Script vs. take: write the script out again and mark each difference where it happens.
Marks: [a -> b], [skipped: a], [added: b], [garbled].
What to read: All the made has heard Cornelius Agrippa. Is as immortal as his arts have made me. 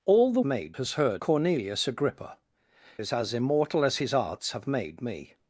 All the made has heard Cornelius Agrippa. Is as immortal as his arts have made me.